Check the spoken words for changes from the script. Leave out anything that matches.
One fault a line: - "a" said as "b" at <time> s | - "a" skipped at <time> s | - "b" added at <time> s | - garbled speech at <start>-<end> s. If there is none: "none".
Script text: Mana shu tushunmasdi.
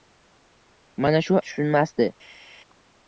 none